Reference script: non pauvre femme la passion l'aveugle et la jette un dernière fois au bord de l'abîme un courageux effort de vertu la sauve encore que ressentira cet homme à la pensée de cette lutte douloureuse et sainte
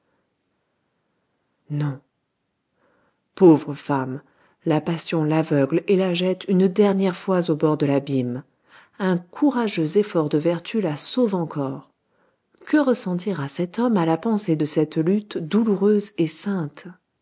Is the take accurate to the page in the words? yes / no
no